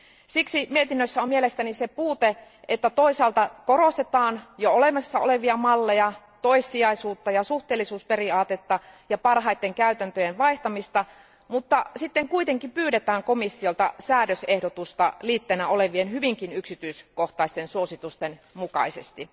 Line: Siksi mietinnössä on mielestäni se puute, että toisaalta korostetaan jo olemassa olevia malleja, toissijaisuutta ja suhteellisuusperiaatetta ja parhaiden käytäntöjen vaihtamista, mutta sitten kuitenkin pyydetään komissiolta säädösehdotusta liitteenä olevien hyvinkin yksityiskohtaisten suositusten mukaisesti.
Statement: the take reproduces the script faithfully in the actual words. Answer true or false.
true